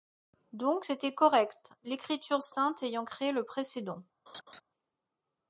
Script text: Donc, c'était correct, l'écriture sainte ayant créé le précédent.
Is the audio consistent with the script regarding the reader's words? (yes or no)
yes